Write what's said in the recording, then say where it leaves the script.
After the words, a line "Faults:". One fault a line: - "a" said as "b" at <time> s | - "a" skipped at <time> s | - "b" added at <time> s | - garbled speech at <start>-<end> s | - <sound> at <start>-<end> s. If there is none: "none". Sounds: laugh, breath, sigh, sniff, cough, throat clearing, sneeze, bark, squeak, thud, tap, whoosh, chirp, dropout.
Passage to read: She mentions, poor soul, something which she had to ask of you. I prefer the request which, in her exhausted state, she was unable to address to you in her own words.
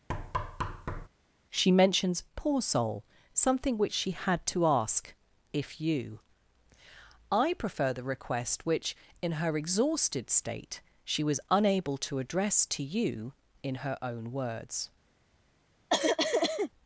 She mentions, poor soul, something which she had to ask if you. I prefer the request which, in her exhausted state, she was unable to address to you in her own words.
Faults:
- thud at 0.1-1.1 s
- "of" said as "if" at 5.5 s
- cough at 15.9-16.7 s